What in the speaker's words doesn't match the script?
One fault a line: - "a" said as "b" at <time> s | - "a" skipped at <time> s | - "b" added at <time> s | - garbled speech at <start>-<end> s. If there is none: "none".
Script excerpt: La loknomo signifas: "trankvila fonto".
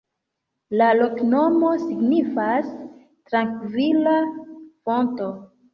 none